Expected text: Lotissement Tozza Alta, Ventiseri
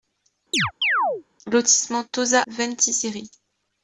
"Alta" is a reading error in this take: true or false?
true